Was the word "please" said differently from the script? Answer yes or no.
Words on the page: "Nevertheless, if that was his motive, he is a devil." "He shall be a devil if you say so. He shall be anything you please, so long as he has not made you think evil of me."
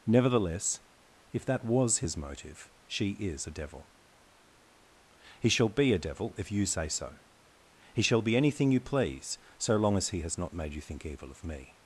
no